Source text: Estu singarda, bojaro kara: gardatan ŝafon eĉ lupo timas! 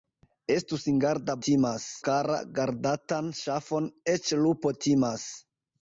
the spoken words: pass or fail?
fail